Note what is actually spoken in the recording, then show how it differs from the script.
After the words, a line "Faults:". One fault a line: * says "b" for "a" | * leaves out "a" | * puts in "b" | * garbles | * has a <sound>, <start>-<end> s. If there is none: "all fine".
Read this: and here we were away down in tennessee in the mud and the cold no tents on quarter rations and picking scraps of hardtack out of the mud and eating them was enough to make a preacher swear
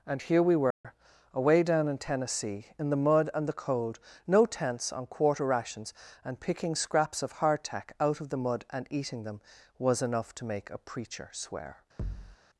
and here we were away down in tennessee in the mud and the cold no tents on quarter rations and picking scraps of hardtack out of the mud and eating them was enough to make a preacher swear
Faults:
* has a dropout, 0.7-0.8 s
* has a thud, 12.0-12.4 s